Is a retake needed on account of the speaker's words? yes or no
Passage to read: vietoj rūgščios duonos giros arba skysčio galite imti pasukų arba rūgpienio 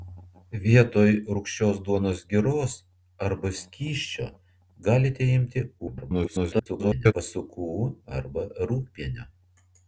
yes